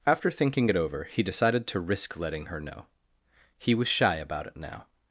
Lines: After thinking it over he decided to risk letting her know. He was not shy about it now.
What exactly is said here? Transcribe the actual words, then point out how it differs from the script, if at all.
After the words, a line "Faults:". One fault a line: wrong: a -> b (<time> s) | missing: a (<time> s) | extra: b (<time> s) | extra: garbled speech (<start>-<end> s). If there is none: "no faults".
After thinking it over he decided to risk letting her know. He was shy about it now.
Faults:
missing: not (3.9 s)